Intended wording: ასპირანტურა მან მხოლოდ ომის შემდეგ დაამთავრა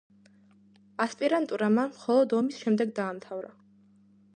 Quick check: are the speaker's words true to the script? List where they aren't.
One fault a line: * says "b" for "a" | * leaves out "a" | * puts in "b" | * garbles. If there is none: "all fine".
all fine